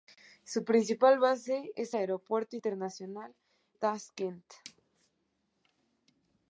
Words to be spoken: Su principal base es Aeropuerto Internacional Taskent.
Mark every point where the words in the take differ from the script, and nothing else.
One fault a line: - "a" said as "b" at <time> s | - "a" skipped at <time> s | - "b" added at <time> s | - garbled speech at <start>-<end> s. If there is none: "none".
none